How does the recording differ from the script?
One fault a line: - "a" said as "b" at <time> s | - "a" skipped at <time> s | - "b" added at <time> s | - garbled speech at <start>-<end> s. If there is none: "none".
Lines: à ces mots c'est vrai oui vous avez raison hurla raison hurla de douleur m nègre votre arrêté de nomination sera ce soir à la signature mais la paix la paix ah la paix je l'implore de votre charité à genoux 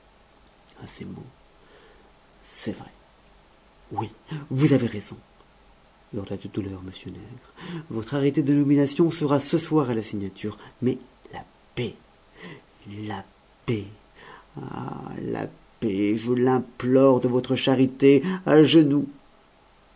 - "raison hurla" skipped at 6.4 s